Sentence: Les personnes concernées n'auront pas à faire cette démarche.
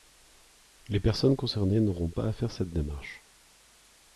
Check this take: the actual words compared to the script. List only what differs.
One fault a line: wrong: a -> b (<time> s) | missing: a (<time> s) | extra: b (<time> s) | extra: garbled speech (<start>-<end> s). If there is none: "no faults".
no faults